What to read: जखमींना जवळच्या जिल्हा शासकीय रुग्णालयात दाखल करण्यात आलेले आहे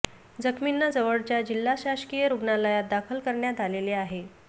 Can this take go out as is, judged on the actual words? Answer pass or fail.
pass